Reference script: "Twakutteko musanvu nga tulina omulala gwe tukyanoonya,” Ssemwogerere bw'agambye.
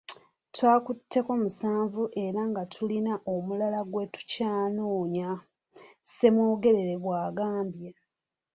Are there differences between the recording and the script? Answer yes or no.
yes